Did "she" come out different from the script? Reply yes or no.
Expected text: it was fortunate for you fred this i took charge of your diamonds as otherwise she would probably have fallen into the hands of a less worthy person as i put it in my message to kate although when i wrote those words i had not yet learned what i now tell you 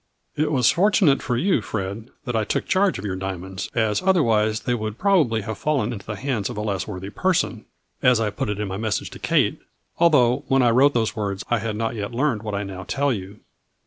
yes